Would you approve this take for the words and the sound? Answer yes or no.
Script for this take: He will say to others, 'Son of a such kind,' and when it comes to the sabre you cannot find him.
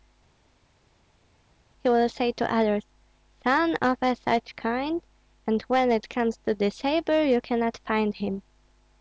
yes